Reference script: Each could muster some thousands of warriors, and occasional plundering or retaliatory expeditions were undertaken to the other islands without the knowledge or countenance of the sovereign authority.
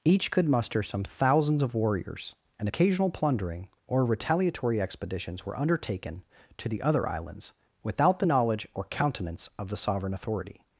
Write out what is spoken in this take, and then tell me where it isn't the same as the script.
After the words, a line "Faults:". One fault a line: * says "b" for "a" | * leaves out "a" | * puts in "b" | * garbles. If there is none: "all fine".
Each could muster some thousands of warriors, and occasional plundering or retaliatory expeditions were undertaken to the other islands without the knowledge or countenance of the sovereign authority.
Faults:
all fine